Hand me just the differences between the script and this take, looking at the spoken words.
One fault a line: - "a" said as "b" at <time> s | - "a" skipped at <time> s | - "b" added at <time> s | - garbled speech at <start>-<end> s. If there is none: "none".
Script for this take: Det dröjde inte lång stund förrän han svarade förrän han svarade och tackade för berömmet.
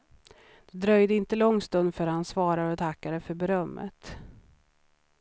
- "förrän han svarade" skipped at 2.7 s